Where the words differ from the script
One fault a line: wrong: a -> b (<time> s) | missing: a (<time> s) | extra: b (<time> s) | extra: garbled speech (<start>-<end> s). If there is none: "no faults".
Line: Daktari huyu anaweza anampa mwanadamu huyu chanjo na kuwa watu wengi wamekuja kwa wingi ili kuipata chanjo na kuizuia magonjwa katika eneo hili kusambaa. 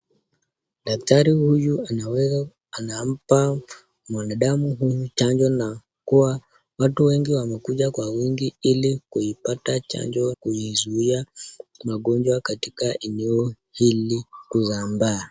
missing: na (10.3 s)